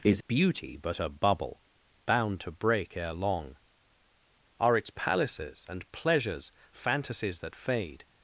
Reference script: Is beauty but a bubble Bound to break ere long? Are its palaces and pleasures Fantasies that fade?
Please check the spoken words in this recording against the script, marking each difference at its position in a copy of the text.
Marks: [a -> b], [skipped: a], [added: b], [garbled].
Is beauty but a bubble Bound to break ere long? Are its palaces and pleasures Fantasies that fade?